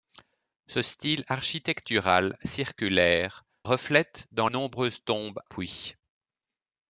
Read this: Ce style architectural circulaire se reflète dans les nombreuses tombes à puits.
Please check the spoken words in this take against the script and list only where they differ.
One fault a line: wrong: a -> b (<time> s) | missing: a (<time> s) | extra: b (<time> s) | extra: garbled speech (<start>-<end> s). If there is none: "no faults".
missing: se (3.4 s)
missing: les (4.5 s)
missing: à (5.4 s)